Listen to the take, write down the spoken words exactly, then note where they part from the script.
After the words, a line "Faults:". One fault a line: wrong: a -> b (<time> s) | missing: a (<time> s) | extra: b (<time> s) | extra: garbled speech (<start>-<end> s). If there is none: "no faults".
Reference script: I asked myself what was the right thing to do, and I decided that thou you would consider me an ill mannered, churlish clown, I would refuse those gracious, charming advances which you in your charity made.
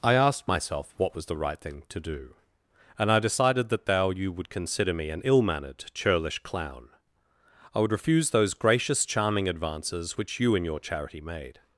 I asked myself what was the right thing to do, and I decided that thou you would consider me an ill mannered, churlish clown, I would refuse those gracious, charming advances which you in your charity made.
Faults:
no faults